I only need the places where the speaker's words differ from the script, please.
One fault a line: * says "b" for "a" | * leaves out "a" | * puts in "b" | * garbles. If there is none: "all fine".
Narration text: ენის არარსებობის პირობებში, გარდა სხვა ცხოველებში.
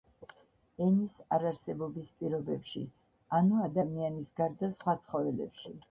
* puts in "ანუ ადამიანის"